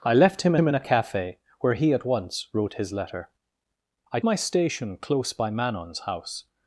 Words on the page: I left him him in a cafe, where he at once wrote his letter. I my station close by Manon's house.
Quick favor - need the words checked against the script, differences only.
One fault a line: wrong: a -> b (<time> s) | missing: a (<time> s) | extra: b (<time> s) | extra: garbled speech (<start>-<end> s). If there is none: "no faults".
no faults